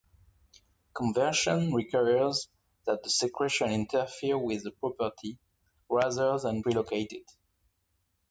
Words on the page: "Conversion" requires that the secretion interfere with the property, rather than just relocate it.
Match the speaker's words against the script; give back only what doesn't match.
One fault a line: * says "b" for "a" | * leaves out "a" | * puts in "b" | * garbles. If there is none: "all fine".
* leaves out "just"